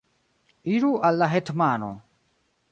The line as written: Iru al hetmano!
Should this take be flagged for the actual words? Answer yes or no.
yes